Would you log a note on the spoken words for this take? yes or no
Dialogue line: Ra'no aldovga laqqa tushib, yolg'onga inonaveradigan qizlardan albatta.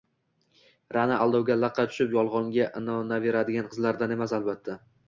yes